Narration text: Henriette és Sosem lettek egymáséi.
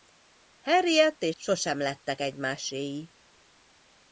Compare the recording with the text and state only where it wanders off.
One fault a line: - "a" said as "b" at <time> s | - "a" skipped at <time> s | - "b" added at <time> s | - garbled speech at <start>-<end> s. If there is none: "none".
none